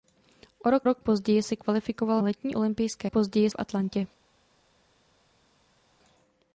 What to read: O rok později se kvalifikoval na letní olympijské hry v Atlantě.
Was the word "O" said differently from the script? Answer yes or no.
no